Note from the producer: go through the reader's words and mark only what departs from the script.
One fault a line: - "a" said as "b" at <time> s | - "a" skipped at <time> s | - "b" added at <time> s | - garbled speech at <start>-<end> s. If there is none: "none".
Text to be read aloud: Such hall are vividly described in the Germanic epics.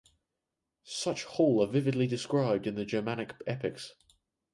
none